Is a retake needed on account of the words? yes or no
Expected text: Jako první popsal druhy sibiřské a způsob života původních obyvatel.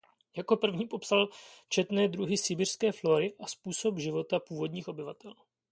yes